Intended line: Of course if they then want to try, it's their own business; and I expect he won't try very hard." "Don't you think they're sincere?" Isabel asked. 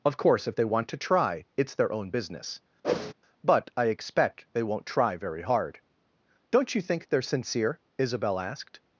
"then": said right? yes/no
no